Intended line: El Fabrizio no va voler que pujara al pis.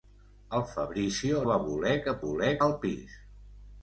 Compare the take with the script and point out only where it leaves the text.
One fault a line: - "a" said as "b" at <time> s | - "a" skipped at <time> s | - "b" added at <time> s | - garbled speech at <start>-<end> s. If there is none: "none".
- "no" skipped at 1.4 s
- "pujara" said as "voler" at 2.2 s